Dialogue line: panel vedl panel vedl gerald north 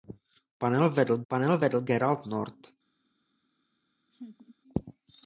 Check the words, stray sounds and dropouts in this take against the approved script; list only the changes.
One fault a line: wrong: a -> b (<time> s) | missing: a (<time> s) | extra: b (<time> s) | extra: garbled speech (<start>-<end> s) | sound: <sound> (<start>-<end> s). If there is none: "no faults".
sound: laugh (4.1-4.6 s)